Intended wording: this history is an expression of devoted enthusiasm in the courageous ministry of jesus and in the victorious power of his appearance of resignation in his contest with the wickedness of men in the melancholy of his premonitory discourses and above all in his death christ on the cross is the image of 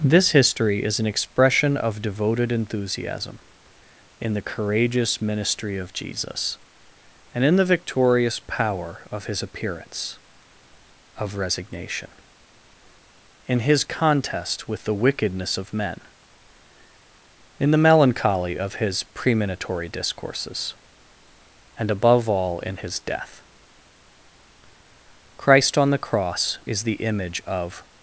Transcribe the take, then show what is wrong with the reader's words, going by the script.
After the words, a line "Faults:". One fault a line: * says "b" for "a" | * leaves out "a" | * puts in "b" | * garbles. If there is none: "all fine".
this history is an expression of devoted enthusiasm in the courageous ministry of jesus and in the victorious power of his appearance of resignation in his contest with the wickedness of men in the melancholy of his premonitory discourses and above all in his death christ on the cross is the image of
Faults:
all fine